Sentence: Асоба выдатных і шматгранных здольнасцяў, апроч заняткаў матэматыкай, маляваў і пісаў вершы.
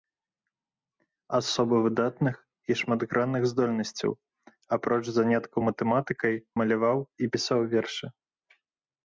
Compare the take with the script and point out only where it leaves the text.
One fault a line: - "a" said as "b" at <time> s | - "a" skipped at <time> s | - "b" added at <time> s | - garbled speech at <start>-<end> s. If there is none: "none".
none